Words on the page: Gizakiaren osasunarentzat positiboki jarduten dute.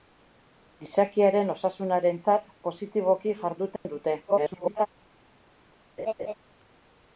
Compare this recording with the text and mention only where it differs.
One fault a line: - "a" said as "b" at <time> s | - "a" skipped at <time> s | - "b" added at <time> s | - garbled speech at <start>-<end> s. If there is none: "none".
- garbled speech at 4.3-4.9 s